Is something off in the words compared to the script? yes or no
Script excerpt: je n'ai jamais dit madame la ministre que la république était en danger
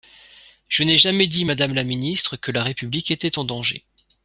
no